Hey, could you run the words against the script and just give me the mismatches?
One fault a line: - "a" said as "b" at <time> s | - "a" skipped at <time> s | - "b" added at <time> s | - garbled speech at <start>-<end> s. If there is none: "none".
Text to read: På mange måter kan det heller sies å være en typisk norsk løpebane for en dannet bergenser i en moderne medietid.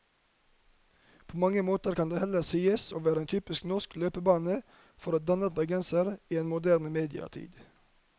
none